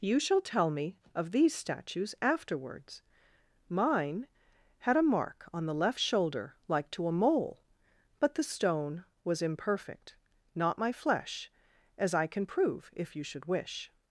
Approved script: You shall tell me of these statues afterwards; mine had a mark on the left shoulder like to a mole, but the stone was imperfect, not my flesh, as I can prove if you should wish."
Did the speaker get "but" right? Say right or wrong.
right